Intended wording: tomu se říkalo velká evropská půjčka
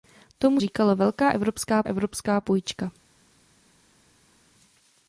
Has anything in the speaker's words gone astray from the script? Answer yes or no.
yes